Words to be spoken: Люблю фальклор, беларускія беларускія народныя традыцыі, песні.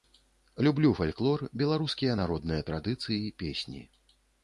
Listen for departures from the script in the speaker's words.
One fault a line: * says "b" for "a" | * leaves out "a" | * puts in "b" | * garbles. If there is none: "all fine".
* leaves out "беларускія"